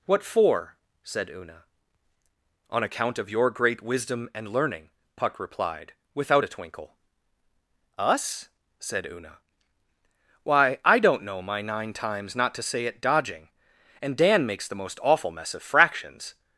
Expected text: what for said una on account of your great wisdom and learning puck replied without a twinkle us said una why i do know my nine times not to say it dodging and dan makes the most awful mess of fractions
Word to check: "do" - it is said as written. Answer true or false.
false